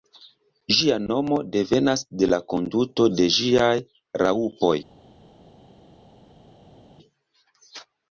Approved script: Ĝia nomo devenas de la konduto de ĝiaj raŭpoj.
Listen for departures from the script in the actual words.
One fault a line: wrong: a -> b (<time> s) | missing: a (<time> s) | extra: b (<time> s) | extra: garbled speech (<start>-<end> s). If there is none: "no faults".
no faults